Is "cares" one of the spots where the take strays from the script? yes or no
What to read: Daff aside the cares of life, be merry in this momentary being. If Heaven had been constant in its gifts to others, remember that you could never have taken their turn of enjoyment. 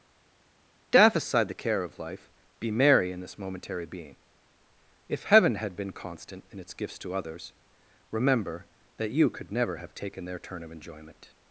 yes